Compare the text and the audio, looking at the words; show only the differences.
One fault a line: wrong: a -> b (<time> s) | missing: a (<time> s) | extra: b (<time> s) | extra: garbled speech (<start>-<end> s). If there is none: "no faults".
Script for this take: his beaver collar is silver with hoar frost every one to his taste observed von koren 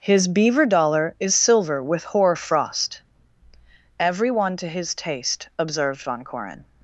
wrong: collar -> dollar (0.7 s)